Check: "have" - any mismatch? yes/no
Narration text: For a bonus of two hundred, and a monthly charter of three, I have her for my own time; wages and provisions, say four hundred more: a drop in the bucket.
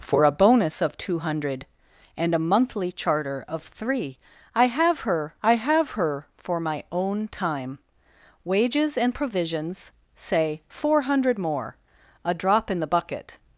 no